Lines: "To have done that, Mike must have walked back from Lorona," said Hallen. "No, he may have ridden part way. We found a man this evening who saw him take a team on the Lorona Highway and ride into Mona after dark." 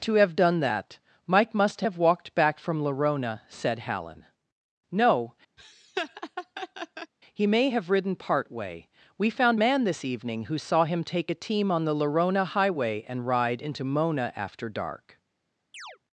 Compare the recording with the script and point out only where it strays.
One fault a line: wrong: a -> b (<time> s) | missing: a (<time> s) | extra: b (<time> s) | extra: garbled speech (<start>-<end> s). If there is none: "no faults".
missing: a (9.6 s)